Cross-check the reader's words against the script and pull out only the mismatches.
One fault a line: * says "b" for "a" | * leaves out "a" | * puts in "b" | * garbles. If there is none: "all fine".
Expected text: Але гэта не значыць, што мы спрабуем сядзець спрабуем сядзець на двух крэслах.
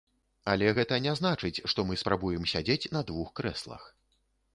* leaves out "спрабуем сядзець"